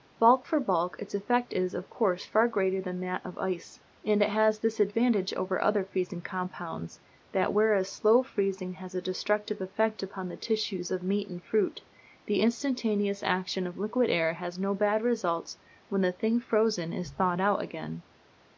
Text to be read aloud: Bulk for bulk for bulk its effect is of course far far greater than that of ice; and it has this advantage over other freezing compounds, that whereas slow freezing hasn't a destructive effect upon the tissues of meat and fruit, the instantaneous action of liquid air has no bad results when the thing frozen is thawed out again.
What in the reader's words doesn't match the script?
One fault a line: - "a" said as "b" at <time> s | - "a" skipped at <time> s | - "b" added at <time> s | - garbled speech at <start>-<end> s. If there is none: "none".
- "for bulk" skipped at 0.9 s
- "far" skipped at 2.5 s
- "hasn't" said as "has" at 8.8 s